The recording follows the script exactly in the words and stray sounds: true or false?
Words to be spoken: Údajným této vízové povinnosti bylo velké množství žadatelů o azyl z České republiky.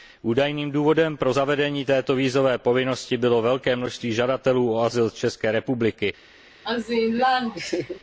false